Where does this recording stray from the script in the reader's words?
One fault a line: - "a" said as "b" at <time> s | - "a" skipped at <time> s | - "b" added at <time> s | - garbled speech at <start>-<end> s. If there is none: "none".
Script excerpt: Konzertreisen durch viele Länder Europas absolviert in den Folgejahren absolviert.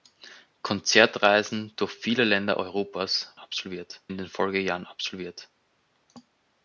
none